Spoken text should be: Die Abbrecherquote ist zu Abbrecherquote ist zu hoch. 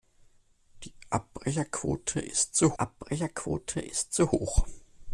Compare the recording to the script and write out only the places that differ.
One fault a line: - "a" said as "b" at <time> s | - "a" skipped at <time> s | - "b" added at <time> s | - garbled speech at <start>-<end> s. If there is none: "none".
none